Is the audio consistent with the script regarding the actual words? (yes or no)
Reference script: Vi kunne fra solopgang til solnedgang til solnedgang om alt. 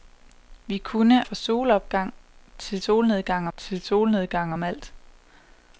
yes